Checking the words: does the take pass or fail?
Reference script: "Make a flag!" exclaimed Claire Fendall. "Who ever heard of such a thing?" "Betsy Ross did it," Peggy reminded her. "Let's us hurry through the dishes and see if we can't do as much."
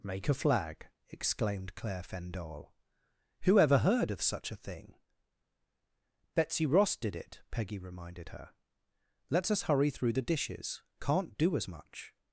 fail